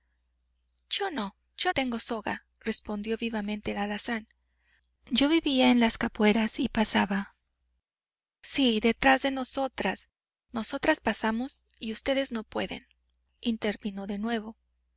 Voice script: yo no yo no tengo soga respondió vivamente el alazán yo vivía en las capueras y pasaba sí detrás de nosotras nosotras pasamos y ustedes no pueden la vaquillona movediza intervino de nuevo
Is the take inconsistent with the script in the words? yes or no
yes